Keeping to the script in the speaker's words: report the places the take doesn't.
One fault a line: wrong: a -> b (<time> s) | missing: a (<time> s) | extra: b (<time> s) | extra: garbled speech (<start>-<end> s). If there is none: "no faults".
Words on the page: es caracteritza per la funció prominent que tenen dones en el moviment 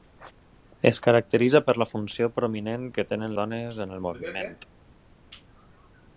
no faults